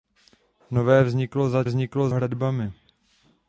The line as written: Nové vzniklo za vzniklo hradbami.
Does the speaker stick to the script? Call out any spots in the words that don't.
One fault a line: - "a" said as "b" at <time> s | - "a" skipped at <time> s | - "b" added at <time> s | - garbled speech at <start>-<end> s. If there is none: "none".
none